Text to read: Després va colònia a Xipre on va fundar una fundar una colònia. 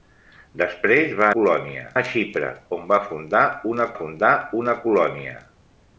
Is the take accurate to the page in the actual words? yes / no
yes